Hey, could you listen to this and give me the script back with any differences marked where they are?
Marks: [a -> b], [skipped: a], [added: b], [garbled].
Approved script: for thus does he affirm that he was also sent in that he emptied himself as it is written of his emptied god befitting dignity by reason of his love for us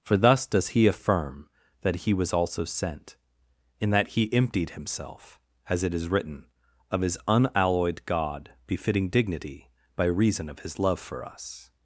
for thus does he affirm that he was also sent in that he emptied himself as it is written of his [emptied -> unalloyed] god befitting dignity by reason of his love for us